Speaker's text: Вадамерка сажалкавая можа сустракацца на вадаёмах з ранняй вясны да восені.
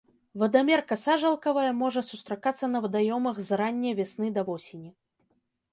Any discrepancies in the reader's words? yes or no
no